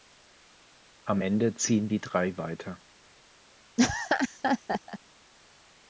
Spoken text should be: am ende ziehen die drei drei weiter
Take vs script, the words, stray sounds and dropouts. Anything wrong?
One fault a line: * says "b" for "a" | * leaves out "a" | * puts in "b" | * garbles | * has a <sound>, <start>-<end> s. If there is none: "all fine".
* leaves out "drei"
* has a laugh, 3.8-5.0 s